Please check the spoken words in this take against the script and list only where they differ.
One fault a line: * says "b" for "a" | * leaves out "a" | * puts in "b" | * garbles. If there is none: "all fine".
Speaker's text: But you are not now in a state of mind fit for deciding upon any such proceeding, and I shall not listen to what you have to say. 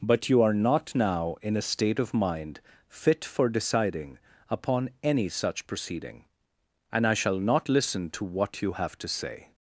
all fine